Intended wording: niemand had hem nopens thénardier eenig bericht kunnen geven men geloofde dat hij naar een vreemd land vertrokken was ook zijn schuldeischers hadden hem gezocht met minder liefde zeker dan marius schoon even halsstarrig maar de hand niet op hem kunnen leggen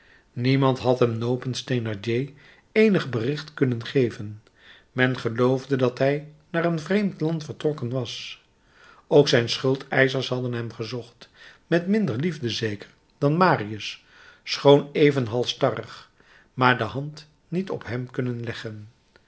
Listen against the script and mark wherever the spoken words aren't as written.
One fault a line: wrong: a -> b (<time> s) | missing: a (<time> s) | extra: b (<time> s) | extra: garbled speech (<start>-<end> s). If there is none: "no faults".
no faults